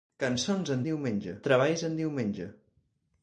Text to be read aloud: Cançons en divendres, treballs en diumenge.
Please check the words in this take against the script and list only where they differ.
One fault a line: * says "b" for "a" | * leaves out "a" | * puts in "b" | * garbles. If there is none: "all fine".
* says "diumenge" for "divendres"